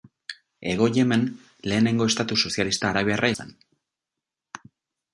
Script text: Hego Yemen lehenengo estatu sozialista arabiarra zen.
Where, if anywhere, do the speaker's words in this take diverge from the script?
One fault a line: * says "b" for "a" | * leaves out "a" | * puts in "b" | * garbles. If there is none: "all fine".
all fine